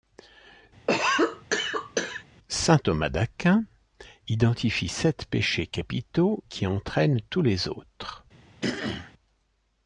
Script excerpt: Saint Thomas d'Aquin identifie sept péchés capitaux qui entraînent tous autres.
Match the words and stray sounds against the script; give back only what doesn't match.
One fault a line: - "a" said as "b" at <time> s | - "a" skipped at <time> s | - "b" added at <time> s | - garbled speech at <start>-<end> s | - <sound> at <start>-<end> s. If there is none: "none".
- cough at 0.9-2.2 s
- "les" added at 7.4 s
- throat clearing at 8.6-9.1 s